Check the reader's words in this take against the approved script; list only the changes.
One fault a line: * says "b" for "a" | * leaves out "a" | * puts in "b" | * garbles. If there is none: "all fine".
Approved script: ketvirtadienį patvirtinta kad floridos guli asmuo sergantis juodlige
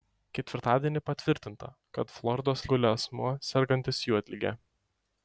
all fine